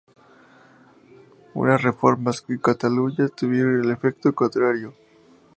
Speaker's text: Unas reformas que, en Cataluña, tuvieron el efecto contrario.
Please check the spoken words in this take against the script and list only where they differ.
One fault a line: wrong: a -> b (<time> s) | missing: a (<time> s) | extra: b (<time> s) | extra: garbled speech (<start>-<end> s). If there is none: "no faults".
missing: que (2.4 s)